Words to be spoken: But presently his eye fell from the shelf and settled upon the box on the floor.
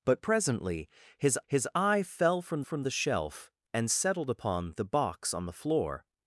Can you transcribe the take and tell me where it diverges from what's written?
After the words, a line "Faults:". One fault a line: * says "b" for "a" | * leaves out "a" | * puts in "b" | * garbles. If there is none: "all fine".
But presently his his eye fell from from the shelf and settled upon the box on the floor.
Faults:
* puts in "his"
* puts in "from"